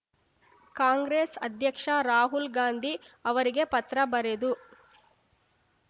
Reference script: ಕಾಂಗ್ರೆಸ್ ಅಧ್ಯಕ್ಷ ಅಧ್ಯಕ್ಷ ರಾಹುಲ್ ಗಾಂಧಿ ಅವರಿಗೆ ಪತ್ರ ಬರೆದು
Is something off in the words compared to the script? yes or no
yes